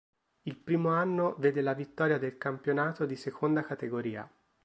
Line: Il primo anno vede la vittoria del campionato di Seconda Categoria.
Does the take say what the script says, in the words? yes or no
yes